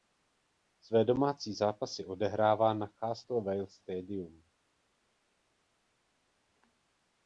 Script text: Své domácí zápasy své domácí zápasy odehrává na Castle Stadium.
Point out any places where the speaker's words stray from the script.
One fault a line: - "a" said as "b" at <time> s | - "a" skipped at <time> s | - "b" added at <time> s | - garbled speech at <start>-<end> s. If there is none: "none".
- "své domácí zápasy" skipped at 2.1 s
- "Vale" added at 3.4 s